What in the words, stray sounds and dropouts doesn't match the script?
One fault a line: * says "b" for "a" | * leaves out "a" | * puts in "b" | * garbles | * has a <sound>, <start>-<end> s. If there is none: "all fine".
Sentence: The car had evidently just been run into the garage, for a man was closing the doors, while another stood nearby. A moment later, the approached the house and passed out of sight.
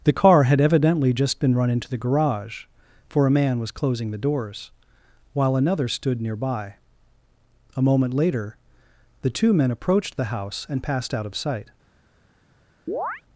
* puts in "two men"
* has a chirp, 12.9-13.2 s